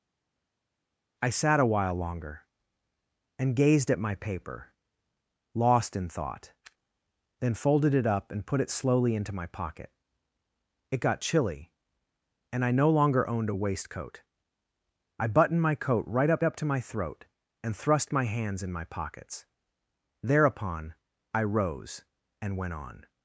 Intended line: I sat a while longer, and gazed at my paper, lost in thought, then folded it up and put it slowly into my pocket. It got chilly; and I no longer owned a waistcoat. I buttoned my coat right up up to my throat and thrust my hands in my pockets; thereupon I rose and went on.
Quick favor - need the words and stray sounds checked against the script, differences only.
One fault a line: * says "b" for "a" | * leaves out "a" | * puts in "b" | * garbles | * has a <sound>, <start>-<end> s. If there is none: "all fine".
all fine